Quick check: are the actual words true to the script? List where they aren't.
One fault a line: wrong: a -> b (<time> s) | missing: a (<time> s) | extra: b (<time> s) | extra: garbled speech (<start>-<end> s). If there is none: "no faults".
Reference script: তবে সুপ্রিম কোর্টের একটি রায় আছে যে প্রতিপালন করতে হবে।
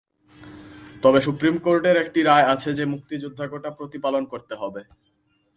extra: মুক্তিযোদ্ধা কোটা (2.9 s)